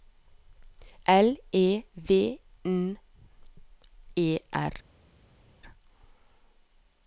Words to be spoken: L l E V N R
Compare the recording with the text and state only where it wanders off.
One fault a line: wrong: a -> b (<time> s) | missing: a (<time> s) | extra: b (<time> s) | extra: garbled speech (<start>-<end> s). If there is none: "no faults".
missing: l (1.4 s)
extra: E (4.2 s)